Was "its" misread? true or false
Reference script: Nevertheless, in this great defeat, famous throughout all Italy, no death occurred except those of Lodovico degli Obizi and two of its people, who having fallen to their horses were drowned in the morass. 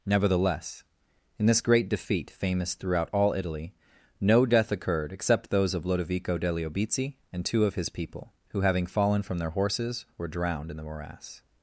true